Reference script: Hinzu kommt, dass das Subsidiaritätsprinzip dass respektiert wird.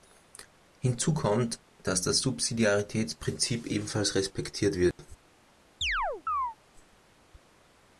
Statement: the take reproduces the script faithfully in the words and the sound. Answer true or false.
false